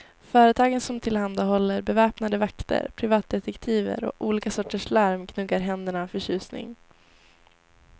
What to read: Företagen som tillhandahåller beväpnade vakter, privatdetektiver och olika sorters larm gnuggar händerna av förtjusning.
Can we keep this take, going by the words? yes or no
yes